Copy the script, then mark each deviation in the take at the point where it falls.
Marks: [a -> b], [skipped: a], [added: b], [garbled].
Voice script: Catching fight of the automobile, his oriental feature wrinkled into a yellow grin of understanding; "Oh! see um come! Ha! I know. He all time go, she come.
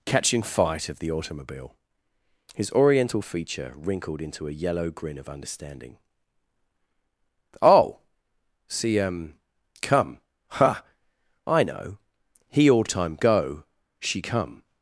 Catching fight of the automobile, his oriental feature wrinkled into a yellow grin of understanding; "Oh! see um come! Ha! I know. He all time go, she come.